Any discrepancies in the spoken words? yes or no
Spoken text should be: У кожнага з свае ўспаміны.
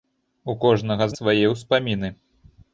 no